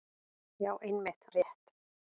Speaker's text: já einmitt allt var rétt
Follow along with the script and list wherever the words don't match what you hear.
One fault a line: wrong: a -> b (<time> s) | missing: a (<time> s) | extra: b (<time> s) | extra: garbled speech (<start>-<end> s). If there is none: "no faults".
missing: allt var (1.3 s)